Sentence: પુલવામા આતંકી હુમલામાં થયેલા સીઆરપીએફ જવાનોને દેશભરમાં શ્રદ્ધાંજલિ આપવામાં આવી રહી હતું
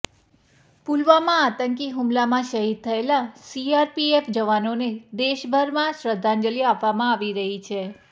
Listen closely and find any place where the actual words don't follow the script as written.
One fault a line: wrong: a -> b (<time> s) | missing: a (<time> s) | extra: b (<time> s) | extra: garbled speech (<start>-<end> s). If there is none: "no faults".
extra: શહીદ (2.5 s)
wrong: હતું -> છે (7.7 s)